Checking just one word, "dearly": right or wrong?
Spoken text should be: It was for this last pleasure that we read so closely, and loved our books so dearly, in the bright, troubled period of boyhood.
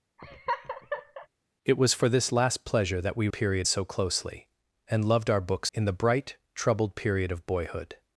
wrong